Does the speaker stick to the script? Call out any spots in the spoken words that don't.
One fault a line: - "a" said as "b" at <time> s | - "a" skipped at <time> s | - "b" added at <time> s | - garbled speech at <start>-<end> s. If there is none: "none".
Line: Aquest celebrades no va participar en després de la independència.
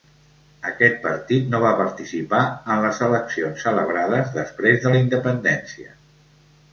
- "celebrades" said as "partit" at 1.0 s
- "les eleccions celebrades" added at 2.9 s